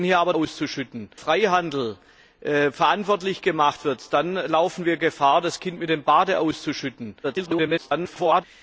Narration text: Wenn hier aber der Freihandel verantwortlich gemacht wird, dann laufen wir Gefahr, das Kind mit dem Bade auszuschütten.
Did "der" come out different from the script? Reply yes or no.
yes